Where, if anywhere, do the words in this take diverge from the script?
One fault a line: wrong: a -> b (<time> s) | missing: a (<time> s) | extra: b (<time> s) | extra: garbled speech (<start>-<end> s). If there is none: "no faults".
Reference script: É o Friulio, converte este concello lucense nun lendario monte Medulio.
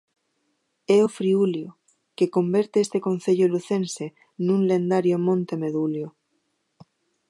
extra: que (2.2 s)